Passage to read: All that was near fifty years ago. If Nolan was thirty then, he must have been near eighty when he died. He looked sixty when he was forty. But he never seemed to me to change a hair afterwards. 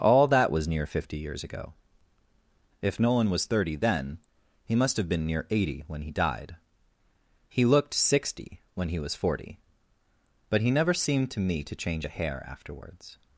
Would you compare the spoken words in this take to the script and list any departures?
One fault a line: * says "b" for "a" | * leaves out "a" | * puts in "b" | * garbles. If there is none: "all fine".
all fine